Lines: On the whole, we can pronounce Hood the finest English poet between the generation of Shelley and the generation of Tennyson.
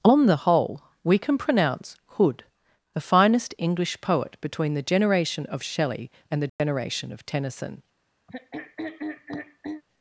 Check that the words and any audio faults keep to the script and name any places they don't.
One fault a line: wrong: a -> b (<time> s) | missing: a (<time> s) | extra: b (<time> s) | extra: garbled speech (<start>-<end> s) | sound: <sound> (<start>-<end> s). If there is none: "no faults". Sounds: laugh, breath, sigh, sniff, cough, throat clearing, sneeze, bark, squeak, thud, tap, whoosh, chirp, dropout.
sound: dropout (6.5-6.6 s)
sound: throat clearing (8.3-9.8 s)